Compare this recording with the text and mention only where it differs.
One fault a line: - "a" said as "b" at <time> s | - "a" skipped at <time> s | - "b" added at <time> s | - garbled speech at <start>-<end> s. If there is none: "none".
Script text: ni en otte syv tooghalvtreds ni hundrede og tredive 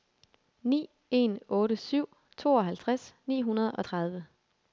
none